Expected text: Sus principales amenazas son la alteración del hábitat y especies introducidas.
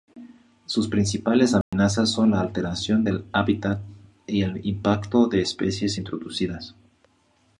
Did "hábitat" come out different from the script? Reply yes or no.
no